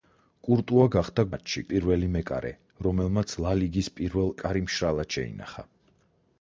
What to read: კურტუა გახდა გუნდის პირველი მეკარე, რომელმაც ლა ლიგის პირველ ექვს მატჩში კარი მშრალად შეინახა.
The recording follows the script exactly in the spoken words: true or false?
false